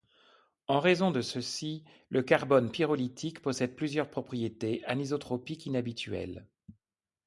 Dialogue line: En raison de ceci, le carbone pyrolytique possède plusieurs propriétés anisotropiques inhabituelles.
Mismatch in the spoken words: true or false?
false